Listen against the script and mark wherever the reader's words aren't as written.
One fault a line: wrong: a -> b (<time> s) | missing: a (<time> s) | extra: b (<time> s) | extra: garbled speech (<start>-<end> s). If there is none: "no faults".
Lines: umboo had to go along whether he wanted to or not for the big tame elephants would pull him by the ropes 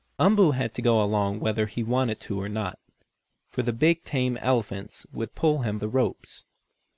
missing: by (5.8 s)